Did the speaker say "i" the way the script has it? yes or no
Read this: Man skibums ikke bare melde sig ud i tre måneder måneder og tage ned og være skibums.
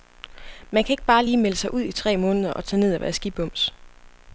yes